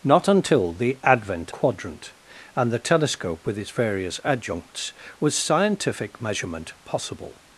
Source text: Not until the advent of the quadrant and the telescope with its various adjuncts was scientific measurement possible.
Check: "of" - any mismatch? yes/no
yes